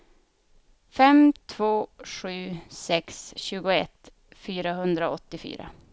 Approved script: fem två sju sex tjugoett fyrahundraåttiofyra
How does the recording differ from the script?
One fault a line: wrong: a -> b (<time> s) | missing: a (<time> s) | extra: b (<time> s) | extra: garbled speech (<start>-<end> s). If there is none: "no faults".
no faults